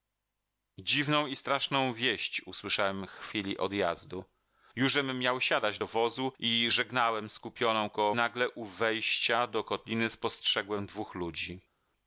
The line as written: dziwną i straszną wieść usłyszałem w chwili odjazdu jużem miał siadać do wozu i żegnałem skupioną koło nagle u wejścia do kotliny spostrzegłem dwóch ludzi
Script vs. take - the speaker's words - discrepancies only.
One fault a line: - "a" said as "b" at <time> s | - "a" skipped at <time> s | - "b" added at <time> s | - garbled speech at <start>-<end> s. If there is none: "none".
none